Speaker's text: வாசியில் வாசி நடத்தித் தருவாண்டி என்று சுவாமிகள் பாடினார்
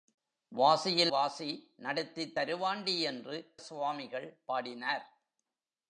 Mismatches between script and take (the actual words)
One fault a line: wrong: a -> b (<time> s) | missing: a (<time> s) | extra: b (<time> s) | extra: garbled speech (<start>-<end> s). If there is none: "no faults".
no faults